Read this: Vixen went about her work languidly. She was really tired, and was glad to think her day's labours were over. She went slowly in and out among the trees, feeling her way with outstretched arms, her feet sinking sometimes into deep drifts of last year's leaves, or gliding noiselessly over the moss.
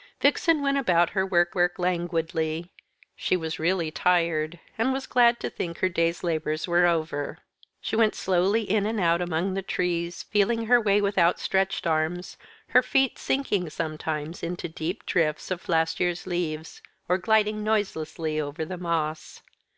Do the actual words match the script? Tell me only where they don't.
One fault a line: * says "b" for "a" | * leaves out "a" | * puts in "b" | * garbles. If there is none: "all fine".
* puts in "work"